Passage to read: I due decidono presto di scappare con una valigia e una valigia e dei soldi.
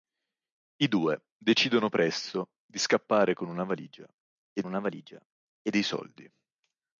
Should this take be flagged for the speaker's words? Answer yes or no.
no